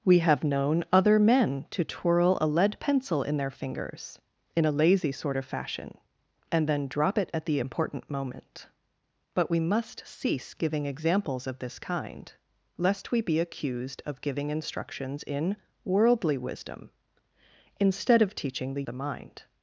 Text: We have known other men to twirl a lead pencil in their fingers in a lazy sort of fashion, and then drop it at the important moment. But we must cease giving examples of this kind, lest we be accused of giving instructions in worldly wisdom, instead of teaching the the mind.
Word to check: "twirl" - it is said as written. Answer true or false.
true